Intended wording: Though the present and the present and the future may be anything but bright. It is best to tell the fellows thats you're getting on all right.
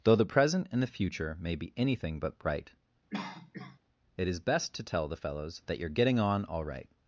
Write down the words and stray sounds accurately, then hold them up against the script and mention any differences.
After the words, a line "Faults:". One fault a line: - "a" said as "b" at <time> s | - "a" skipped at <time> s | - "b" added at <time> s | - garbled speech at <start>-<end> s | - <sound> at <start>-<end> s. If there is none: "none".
Though the present and the future may be anything but bright. It is best to tell the fellows that you're getting on all right.
Faults:
- "present and the" skipped at 0.9 s
- cough at 3.1-3.8 s
- "thats" said as "that" at 5.7 s